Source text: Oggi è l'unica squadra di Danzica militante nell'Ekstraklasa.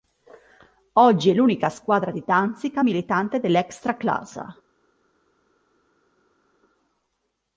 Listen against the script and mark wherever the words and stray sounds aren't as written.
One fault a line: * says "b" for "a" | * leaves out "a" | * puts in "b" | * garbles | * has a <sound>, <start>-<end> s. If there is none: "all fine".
all fine